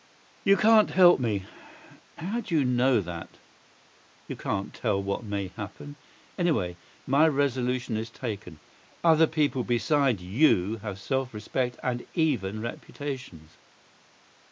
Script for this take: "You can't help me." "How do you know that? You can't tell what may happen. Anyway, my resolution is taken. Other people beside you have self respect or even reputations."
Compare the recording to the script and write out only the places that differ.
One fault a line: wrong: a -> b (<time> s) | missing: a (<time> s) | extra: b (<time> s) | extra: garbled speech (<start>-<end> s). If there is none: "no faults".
wrong: or -> and (11.8 s)